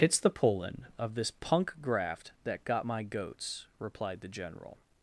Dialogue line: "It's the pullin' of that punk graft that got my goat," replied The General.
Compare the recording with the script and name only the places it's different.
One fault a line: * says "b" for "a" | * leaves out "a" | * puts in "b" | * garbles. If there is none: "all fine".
* says "this" for "that"
* says "goats" for "goat"